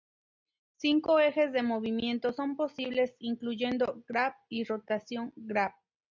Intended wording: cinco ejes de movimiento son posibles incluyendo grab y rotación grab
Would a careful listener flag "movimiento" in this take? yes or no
no